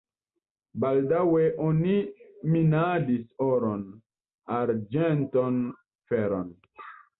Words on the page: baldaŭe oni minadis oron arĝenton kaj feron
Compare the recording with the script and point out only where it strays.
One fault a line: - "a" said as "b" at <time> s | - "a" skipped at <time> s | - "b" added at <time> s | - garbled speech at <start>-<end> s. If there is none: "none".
- "kaj" skipped at 5.6 s